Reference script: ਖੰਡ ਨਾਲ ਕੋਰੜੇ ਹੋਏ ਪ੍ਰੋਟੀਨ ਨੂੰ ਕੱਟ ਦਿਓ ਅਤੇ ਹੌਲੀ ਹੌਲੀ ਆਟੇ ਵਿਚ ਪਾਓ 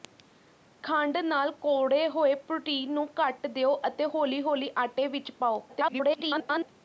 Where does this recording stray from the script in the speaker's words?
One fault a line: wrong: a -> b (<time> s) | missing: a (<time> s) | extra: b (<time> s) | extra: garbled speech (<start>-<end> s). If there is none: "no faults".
extra: garbled speech (5.7-6.7 s)